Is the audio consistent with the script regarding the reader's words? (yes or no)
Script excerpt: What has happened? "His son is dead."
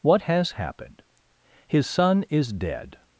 yes